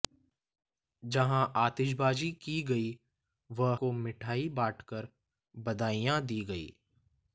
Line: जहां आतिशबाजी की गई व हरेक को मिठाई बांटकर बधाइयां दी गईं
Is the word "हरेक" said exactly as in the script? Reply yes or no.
no